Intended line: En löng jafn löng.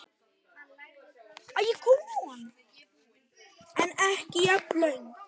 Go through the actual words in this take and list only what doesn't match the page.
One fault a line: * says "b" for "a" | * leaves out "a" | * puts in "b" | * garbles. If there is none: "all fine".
* says "ekki" for "löng"